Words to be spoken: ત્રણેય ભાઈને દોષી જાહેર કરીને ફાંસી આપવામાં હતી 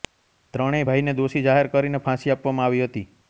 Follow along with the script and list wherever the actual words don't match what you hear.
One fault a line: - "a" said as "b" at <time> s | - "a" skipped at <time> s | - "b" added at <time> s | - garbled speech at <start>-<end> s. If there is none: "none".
- "આવી" added at 2.7 s